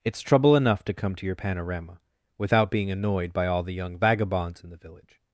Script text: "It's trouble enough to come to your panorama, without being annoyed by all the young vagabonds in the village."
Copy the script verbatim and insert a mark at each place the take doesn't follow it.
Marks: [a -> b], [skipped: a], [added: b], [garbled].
"It's trouble enough to come to your panorama, without being annoyed by all the young vagabonds in the village."